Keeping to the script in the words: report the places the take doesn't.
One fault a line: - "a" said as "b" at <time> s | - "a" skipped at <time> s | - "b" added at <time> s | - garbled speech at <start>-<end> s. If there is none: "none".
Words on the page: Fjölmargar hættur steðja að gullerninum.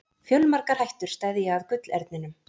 none